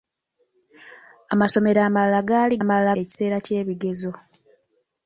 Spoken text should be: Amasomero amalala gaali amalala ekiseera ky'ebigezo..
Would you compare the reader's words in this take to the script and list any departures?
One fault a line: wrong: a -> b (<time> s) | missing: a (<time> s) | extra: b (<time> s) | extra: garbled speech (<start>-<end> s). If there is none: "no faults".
no faults